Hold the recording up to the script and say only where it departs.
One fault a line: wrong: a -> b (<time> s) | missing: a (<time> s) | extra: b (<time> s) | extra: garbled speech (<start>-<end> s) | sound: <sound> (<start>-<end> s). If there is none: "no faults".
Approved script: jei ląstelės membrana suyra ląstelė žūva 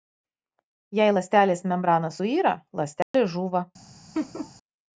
sound: dropout (3.0-3.1 s)
sound: laugh (4.1-4.5 s)